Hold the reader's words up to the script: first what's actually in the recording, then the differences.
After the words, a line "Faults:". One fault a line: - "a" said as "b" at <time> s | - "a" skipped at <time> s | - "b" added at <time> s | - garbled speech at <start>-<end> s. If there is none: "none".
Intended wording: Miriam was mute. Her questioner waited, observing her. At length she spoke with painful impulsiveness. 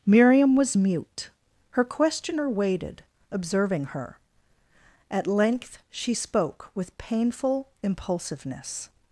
Miriam was mute. Her questioner waited, observing her. At length she spoke with painful impulsiveness.
Faults:
none